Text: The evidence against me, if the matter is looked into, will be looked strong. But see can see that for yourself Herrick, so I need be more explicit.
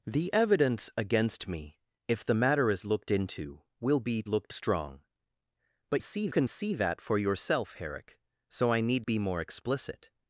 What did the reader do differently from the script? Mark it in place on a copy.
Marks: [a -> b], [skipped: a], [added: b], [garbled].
The evidence against me, if the matter is looked into, will be looked strong. But see can see that for yourself Herrick, so I need be more explicit.